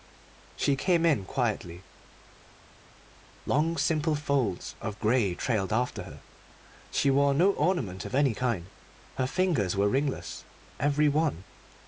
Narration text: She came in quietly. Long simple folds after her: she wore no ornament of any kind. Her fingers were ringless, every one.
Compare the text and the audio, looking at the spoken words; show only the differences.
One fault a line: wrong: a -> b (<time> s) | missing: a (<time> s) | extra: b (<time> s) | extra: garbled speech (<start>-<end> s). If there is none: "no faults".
extra: of grey trailed (4.8 s)